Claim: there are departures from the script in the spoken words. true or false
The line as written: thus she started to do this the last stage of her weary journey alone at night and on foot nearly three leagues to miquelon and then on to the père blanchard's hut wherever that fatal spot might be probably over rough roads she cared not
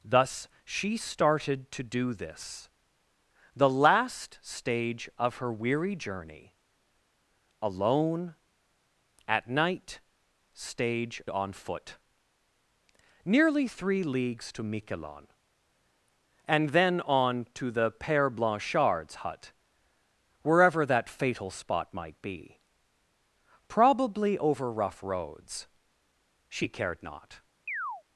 true